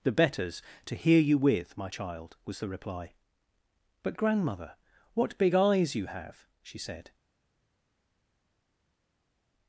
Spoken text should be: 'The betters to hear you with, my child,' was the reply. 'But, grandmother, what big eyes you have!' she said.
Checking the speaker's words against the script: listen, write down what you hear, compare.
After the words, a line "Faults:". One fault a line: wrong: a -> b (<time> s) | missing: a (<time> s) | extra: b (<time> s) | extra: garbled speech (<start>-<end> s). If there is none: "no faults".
'The betters to hear you with, my child,' was the reply. 'But, grandmother, what big eyes you have!' she said.
Faults:
no faults